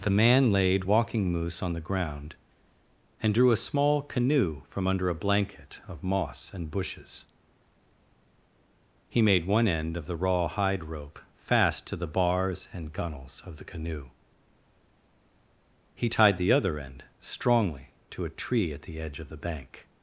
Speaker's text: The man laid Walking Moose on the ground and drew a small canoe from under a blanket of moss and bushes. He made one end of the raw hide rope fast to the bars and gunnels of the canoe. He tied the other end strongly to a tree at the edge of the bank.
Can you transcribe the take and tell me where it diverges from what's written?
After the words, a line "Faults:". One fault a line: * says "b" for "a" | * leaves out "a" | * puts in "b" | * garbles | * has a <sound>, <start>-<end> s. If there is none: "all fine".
The man laid Walking Moose on the ground and drew a small canoe from under a blanket of moss and bushes. He made one end of the raw hide rope fast to the bars and gunnels of the canoe. He tied the other end strongly to a tree at the edge of the bank.
Faults:
all fine